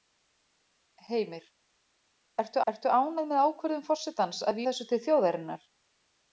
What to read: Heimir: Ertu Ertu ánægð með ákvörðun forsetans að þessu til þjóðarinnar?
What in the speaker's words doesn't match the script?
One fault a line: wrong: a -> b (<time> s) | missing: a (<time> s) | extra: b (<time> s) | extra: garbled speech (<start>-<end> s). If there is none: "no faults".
no faults